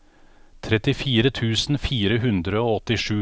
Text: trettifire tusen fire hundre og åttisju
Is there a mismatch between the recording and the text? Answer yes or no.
no